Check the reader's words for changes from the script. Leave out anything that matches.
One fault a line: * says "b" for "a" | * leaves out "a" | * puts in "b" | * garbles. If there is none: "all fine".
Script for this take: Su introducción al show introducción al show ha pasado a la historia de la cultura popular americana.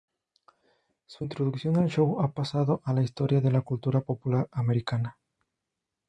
* leaves out "introducción al show"